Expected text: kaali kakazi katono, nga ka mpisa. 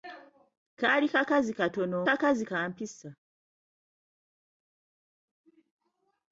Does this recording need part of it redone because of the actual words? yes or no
yes